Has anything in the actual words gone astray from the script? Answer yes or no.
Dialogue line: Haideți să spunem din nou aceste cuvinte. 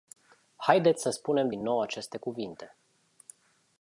no